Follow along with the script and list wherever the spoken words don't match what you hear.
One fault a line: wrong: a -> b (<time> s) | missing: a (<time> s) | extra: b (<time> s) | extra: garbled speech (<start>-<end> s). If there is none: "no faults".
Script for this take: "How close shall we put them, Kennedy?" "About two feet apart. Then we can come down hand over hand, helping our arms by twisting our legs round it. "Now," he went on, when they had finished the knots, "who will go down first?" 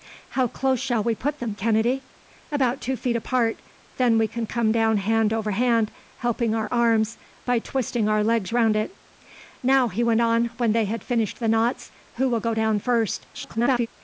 extra: garbled speech (13.3-13.9 s)